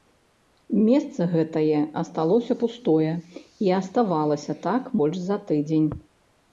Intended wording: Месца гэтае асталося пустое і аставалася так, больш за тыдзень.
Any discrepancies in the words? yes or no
no